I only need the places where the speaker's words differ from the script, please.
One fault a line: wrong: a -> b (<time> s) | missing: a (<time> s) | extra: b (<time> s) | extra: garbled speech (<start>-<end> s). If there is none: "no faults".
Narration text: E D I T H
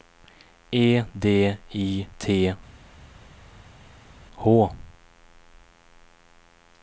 no faults